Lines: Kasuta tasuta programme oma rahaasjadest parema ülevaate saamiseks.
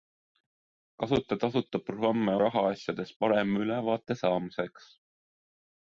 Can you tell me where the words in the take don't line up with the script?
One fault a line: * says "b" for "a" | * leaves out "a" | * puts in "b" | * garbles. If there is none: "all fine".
* leaves out "oma"